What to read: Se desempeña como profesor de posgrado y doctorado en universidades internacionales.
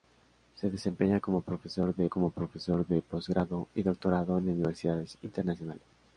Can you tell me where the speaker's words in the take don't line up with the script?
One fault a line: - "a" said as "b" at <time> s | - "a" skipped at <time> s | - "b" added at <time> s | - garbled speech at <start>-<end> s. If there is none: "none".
- "como profesor de" added at 2.1 s